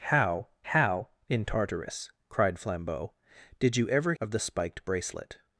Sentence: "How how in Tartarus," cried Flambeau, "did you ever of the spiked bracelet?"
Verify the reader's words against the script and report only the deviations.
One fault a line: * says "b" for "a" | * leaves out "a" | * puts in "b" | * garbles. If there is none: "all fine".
all fine